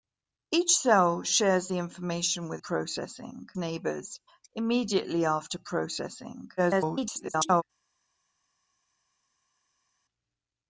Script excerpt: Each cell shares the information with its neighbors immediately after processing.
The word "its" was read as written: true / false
false